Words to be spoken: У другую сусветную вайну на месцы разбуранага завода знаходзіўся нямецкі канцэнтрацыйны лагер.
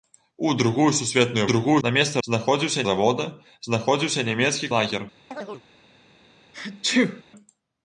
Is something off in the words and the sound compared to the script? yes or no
yes